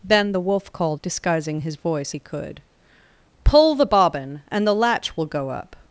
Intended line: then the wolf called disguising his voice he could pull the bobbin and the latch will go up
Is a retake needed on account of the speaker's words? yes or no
no